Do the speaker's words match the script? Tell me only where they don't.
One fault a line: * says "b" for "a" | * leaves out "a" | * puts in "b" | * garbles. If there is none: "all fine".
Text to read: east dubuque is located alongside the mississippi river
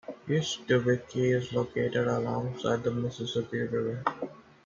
all fine